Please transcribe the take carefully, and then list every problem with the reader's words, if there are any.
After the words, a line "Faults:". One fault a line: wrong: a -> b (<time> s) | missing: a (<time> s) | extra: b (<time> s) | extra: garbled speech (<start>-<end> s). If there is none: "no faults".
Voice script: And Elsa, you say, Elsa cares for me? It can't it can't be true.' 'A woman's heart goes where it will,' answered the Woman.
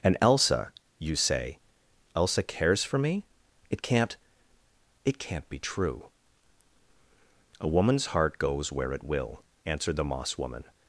And Elsa, you say, Elsa cares for me? It can't it can't be true.' 'A woman's heart goes where it will,' answered the Moss woman.
Faults:
extra: Moss (10.1 s)